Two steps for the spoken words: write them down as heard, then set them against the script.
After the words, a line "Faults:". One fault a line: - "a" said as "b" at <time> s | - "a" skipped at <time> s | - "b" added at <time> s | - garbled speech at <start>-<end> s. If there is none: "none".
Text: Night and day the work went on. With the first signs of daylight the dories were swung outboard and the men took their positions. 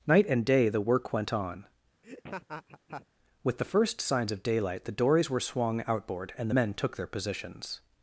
Night and day the work went on. With the first signs of daylight the dories were swung outboard and men took their positions.
Faults:
- "the" skipped at 6.5 s